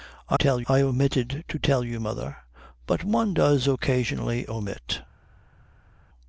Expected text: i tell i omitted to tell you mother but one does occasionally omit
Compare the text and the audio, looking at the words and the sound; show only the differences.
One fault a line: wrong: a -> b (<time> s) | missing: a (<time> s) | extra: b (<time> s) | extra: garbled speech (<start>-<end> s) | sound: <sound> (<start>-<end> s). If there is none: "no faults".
no faults